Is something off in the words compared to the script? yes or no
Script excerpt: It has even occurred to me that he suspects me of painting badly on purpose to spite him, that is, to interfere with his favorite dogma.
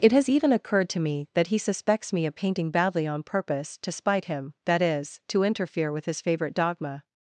no